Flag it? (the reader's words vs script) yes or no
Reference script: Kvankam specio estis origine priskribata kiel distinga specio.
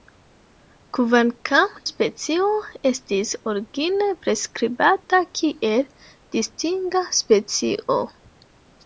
no